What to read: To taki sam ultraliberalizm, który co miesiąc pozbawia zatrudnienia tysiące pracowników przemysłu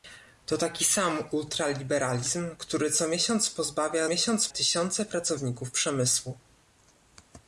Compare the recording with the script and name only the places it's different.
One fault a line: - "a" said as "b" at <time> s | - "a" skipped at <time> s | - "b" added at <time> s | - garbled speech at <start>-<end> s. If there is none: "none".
- "zatrudnienia" said as "miesiąc" at 4.1 s